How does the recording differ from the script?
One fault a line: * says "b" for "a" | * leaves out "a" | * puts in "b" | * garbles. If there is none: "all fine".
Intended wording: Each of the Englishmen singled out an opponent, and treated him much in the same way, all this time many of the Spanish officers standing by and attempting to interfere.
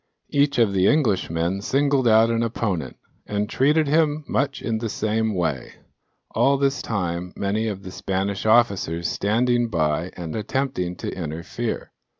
all fine